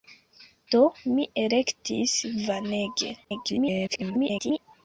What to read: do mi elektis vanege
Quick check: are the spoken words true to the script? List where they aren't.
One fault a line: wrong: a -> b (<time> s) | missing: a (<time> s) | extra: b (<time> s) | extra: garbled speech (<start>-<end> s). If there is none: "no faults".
extra: garbled speech (3.2-4.6 s)